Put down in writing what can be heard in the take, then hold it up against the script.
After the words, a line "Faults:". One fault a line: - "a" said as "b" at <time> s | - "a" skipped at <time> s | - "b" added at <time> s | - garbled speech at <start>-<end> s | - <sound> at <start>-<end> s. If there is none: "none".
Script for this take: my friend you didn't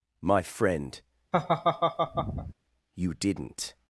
my friend you didn't
Faults:
- laugh at 1.3-2.5 s